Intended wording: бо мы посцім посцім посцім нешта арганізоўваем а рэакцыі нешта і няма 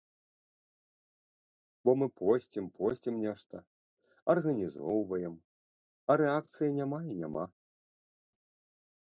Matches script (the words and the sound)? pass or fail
fail